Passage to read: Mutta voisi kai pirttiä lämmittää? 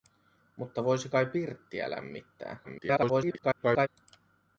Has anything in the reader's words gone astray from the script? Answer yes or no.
yes